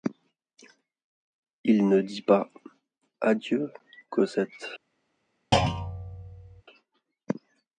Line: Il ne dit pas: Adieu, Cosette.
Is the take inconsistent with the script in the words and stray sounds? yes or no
yes